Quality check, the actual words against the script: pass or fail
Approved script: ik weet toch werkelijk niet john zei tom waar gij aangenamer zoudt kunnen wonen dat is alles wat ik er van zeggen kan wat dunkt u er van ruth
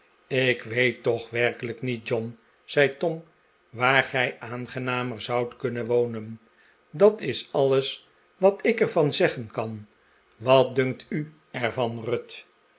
pass